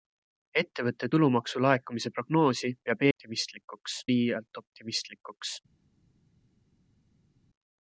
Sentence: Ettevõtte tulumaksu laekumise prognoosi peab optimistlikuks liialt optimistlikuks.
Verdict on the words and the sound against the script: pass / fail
pass